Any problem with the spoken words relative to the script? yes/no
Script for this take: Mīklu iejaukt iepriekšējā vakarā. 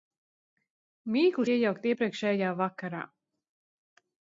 no